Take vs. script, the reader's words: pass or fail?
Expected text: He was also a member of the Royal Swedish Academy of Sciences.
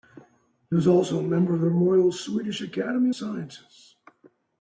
fail